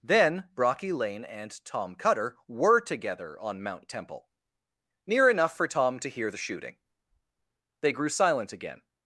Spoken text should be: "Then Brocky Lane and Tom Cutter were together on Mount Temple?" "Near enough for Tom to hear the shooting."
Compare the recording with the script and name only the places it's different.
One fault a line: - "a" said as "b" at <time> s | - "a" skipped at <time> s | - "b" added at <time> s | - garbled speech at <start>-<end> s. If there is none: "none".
- "They grew silent again" added at 7.8 s